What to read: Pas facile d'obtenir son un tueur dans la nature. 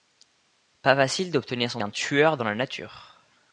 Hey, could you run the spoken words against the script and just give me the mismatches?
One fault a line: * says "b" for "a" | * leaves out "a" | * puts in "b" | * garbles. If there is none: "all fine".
all fine